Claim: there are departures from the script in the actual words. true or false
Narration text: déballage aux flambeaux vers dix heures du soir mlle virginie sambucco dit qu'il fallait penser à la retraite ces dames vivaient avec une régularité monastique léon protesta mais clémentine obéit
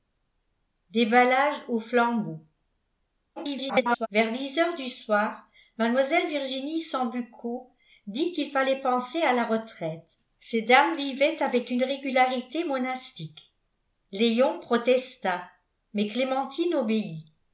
true